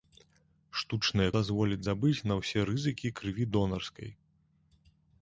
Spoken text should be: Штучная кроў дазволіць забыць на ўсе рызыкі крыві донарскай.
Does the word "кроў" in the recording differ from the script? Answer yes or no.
yes